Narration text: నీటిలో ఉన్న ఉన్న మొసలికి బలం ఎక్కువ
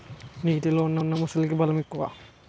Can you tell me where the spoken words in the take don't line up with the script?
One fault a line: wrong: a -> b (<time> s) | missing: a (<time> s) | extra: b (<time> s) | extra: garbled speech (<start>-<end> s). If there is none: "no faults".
no faults